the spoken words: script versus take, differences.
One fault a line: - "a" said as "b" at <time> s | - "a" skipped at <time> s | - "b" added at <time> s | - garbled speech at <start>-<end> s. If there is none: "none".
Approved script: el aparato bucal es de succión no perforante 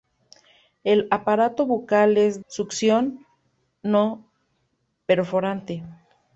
- "de" skipped at 2.4 s